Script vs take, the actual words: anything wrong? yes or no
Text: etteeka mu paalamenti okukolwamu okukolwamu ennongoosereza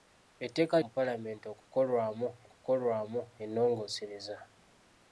no